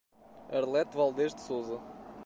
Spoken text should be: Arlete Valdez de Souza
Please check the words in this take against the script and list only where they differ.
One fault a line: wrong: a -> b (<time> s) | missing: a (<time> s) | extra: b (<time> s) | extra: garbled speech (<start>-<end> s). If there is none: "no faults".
no faults